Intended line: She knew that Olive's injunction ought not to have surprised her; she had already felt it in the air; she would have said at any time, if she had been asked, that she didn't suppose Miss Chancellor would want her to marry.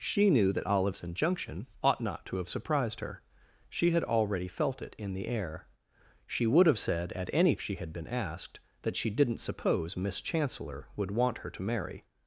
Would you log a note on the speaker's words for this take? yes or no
yes